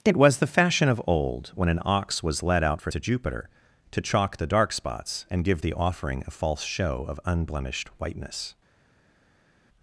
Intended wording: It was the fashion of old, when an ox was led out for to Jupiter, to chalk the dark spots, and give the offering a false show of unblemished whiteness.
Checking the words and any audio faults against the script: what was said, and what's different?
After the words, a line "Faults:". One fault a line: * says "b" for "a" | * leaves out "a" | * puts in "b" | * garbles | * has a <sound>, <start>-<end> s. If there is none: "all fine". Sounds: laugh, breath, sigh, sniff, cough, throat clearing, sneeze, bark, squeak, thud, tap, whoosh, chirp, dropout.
It was the fashion of old, when an ox was led out for to Jupiter, to chalk the dark spots, and give the offering a false show of unblemished whiteness.
Faults:
all fine